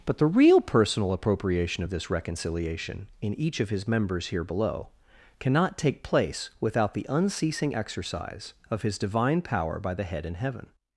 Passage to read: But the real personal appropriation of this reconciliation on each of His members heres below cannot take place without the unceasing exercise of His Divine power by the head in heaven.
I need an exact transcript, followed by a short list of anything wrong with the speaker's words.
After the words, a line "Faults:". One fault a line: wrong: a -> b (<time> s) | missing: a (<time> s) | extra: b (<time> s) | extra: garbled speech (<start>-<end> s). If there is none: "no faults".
But the real personal appropriation of this reconciliation in each of His members here below cannot take place without the unceasing exercise of His Divine power by the head in heaven.
Faults:
wrong: on -> in (3.2 s)
wrong: heres -> here (4.3 s)